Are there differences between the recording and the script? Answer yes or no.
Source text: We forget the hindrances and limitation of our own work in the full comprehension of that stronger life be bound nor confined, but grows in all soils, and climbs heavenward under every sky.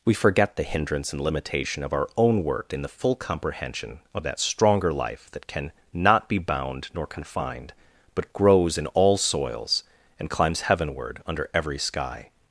yes